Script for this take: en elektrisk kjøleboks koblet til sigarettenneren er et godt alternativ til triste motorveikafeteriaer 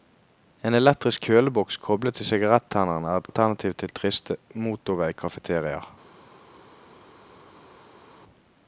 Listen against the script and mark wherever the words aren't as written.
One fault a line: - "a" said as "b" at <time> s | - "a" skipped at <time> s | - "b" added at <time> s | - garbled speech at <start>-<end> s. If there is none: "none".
- "godt" skipped at 3.3 s